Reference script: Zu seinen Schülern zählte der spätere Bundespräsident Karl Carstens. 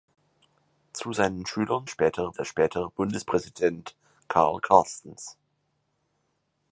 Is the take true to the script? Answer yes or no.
no